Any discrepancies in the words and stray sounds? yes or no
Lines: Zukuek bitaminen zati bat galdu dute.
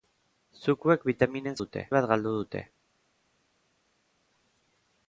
yes